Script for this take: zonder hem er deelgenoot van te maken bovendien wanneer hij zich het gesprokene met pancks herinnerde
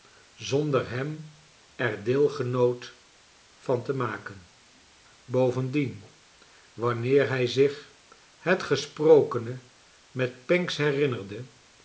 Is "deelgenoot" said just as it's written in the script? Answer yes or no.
yes